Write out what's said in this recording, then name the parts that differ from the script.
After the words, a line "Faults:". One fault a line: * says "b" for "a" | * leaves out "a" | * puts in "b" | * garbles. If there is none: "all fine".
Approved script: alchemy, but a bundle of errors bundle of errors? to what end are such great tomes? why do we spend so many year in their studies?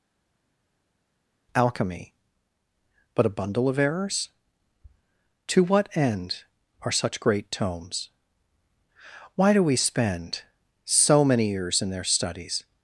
alchemy, but a bundle of errors? to what end are such great tomes? why do we spend so many years in their studies?
Faults:
* leaves out "bundle of errors"
* says "years" for "year"